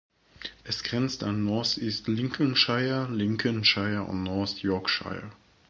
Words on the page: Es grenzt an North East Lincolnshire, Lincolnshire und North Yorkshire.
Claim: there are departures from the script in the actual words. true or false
false